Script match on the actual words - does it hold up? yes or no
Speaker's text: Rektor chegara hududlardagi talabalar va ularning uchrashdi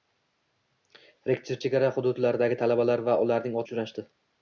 yes